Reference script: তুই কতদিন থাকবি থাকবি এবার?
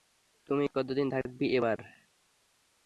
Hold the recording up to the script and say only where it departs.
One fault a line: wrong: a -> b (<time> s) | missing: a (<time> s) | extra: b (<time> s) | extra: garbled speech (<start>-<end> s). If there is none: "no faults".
missing: থাকবি (1.5 s)